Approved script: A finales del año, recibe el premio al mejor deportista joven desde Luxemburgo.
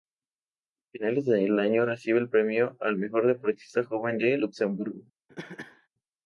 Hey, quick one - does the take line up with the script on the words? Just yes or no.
no